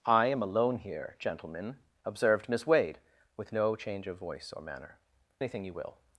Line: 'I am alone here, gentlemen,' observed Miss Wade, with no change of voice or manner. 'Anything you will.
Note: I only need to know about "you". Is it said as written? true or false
true